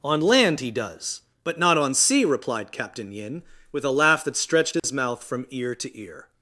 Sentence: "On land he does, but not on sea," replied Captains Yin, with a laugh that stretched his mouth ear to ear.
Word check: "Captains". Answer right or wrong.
wrong